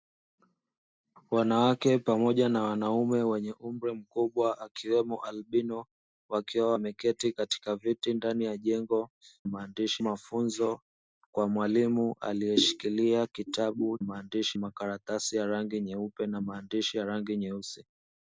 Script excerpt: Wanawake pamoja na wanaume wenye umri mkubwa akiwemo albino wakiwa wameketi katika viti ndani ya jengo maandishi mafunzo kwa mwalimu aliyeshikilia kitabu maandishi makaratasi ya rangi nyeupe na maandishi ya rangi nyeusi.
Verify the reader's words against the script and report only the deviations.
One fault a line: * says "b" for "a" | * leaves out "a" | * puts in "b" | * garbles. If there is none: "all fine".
all fine